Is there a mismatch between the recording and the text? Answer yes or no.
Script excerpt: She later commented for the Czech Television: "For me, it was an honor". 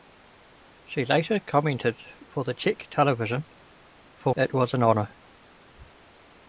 yes